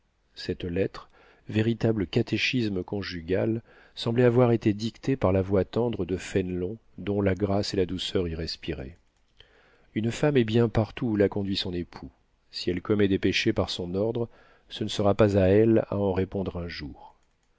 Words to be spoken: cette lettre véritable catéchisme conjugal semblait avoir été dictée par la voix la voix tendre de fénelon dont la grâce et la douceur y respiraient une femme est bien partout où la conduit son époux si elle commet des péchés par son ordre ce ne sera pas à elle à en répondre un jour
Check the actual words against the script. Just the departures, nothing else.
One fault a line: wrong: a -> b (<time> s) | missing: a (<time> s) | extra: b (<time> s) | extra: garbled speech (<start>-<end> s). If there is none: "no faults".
missing: la voix (5.6 s)